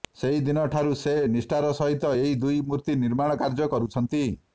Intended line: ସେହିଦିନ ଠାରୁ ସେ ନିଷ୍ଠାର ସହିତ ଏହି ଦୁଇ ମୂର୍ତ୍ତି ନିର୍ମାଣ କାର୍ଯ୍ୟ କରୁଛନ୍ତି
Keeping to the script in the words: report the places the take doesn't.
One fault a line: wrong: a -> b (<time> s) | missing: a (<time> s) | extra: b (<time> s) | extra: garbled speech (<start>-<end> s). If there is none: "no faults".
no faults